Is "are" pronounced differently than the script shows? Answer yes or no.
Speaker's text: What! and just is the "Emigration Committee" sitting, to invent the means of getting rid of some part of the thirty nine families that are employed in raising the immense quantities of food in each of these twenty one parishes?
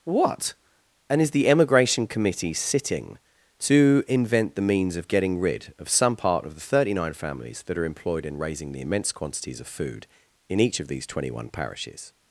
no